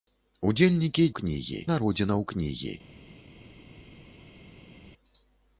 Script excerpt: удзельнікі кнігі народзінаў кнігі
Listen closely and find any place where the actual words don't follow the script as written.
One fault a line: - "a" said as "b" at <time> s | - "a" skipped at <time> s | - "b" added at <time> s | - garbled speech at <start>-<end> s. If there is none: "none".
none